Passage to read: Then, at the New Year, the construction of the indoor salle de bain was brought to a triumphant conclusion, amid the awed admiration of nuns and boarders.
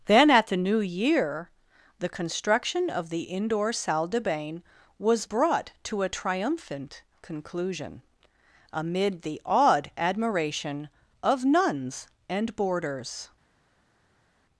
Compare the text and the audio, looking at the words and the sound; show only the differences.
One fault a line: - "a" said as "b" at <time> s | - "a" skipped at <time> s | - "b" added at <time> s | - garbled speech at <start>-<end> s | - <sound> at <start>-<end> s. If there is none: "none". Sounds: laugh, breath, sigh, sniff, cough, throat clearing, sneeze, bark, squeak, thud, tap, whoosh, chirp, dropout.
none